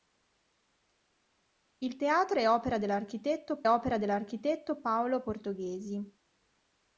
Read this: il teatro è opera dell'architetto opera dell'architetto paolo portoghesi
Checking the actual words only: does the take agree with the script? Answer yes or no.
yes